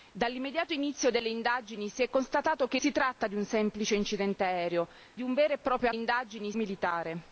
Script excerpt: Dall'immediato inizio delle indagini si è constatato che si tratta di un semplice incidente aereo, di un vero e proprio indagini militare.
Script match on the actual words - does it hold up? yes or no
yes